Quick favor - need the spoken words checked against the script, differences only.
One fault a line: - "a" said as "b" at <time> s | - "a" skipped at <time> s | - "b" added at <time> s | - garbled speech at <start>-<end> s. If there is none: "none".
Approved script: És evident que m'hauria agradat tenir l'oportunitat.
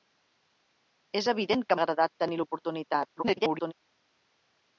- "m'hauria" skipped at 1.8 s
- garbled speech at 3.2-3.7 s